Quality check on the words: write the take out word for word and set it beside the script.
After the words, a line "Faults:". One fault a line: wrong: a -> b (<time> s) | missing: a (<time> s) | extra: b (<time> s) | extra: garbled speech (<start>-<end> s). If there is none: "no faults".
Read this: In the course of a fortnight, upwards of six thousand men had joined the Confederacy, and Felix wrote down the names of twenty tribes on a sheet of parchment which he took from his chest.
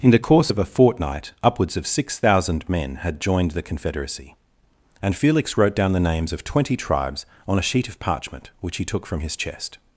In the course of a fortnight, upwards of six thousand men had joined the Confederacy, and Felix wrote down the names of twenty tribes on a sheet of parchment which he took from his chest.
Faults:
no faults